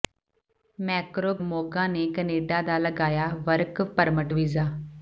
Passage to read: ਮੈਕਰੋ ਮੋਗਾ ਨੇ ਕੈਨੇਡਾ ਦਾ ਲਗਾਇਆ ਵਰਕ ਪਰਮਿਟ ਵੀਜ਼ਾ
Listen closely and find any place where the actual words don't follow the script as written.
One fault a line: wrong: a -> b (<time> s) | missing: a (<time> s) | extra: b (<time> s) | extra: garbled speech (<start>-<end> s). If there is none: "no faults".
no faults